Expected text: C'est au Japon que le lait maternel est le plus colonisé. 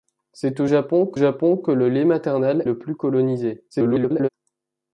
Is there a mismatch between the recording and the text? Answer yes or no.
yes